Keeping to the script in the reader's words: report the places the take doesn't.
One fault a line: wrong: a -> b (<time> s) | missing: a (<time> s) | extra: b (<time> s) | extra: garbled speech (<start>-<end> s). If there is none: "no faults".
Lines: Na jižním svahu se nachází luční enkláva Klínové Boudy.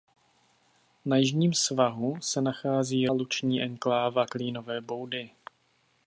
no faults